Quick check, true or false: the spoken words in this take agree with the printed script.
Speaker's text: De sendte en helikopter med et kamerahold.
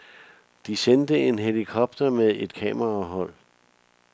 true